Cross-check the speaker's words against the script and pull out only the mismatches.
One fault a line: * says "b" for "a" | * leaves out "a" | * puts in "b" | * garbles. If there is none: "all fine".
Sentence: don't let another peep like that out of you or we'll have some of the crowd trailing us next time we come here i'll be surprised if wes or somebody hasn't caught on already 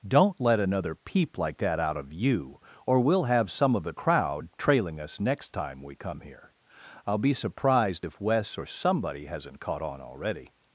all fine